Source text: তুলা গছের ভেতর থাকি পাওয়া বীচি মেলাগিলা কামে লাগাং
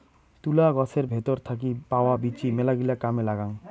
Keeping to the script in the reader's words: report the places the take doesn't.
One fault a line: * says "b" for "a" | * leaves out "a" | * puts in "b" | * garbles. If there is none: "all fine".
all fine